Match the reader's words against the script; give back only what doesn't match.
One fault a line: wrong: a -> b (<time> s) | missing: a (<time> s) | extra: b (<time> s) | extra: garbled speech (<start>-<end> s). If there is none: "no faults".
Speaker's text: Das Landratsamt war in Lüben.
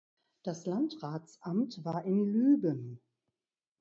no faults